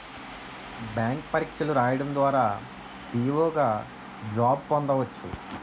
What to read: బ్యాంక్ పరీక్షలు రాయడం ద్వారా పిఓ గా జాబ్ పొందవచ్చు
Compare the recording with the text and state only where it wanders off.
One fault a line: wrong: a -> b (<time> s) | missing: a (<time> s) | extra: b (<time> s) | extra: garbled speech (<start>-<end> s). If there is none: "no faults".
no faults